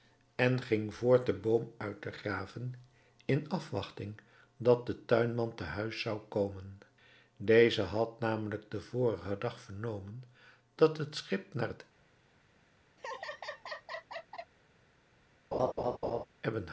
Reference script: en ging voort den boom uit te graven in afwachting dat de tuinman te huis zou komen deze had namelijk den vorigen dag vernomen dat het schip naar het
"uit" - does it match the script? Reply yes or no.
yes